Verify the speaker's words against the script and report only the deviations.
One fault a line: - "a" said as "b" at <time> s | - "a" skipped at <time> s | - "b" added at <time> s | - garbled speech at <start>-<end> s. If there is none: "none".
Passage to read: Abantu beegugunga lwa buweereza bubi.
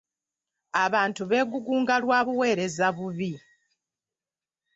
none